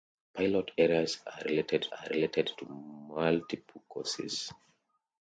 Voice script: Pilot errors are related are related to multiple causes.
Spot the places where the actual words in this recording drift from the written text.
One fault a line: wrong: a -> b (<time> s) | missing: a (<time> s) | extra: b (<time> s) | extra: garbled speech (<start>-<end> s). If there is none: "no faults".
no faults